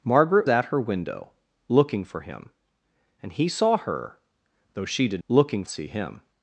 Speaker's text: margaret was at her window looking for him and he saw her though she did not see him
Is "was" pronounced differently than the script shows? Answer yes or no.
yes